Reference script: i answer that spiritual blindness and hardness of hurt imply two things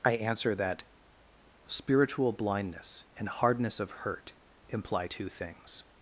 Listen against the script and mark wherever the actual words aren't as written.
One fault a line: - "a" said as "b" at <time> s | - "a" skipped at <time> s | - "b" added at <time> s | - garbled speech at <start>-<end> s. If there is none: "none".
none